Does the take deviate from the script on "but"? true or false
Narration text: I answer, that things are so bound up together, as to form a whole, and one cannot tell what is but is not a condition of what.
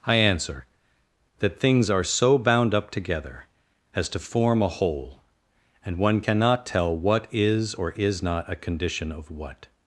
true